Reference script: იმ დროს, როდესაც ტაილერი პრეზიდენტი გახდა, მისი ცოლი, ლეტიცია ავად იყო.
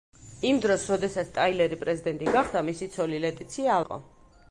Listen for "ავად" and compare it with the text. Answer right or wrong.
wrong